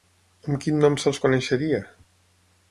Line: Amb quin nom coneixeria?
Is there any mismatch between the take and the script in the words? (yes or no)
yes